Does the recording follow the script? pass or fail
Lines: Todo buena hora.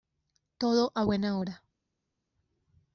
fail